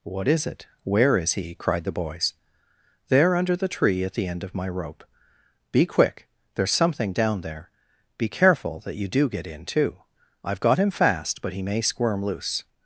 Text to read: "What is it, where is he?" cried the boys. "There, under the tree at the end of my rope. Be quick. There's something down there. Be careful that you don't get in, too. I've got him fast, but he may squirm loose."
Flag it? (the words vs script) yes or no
yes